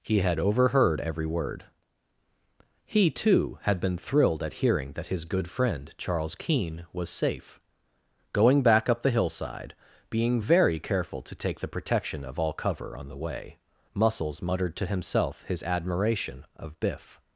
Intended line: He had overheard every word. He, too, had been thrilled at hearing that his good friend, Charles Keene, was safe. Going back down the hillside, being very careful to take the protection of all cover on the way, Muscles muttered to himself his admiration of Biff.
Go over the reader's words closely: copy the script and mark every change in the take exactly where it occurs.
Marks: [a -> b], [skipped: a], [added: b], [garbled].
He had overheard every word. He, too, had been thrilled at hearing that his good friend, Charles Keene, was safe. Going back [down -> up] the hillside, being very careful to take the protection of all cover on the way, Muscles muttered to himself his admiration of Biff.